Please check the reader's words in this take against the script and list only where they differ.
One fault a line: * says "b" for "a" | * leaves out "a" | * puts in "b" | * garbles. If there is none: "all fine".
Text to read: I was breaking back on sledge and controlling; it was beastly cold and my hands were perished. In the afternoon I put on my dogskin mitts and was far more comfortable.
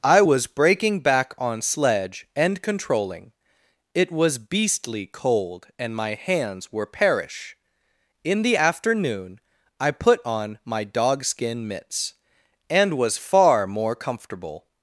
* says "perish" for "perished"